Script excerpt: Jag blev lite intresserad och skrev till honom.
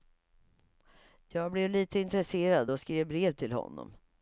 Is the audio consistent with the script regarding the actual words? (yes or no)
no